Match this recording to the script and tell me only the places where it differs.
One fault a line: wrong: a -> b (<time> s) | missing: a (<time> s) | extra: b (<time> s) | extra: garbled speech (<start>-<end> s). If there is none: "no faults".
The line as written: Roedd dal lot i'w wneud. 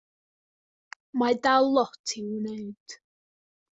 wrong: Roedd -> Mae (1.2 s)